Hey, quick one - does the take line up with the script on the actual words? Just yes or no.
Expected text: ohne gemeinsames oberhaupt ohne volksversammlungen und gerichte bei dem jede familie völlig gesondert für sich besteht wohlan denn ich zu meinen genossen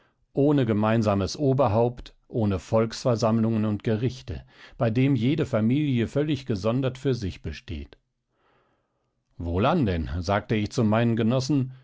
no